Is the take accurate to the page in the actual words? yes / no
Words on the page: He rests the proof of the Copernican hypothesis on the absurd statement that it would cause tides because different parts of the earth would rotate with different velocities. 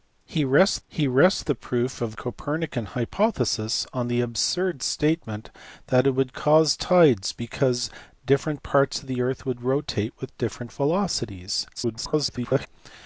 no